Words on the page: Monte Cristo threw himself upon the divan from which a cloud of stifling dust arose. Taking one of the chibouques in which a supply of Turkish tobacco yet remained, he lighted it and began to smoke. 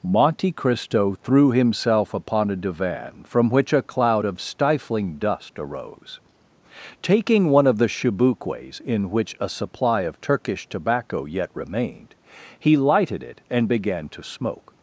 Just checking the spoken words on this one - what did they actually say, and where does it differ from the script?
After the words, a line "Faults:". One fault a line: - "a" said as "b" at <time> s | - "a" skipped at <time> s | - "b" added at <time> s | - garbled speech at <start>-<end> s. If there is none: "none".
Monte Cristo threw himself upon a divan from which a cloud of stifling dust arose. Taking one of the chibouques in which a supply of Turkish tobacco yet remained, he lighted it and began to smoke.
Faults:
- "the" said as "a" at 2.5 s